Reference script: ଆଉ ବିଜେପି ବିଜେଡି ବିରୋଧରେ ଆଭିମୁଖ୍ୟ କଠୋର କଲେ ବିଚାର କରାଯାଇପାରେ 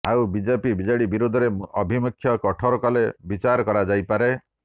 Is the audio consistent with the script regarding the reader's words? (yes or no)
yes